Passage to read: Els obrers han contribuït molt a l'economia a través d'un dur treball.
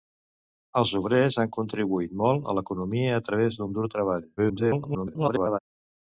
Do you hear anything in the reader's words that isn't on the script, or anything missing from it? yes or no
yes